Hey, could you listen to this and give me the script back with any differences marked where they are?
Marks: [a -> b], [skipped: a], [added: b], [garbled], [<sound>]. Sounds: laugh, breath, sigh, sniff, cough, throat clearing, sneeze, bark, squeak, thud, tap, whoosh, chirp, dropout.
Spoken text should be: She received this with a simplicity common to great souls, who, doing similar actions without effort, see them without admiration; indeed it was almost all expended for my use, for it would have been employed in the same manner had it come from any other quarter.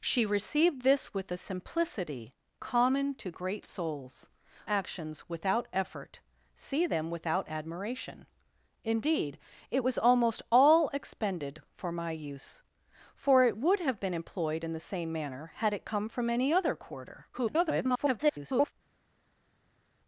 She received this with a simplicity common to great souls, [skipped: who, doing similar] actions without effort, see them without admiration; indeed it was almost all expended for my use, for it would have been employed in the same manner had it come from any other quarter. [garbled]